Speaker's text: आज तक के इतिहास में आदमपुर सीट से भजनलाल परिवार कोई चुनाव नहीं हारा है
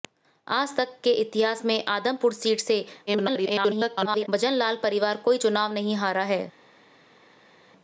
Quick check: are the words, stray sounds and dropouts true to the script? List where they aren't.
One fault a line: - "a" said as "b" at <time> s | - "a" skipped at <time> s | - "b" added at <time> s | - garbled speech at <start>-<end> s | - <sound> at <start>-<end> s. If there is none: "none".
- garbled speech at 3.1-4.3 s